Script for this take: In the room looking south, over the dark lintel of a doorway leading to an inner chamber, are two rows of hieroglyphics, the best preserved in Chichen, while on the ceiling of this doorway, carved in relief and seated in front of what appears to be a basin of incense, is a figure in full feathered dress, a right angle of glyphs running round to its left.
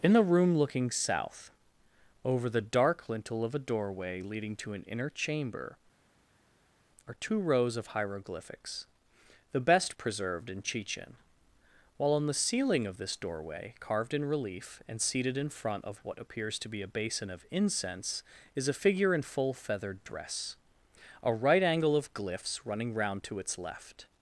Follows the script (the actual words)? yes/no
yes